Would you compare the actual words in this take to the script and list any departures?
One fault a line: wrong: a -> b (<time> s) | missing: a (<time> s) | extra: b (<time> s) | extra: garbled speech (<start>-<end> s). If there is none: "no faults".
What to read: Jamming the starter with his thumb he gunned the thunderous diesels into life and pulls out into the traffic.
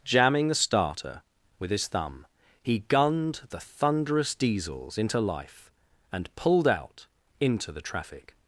wrong: pulls -> pulled (6.4 s)